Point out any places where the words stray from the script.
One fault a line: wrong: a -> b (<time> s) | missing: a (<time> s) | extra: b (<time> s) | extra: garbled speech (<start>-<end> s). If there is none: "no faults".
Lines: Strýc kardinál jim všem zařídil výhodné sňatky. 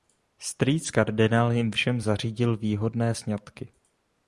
no faults